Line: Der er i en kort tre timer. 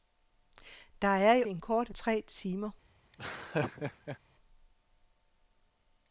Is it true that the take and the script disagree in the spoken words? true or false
false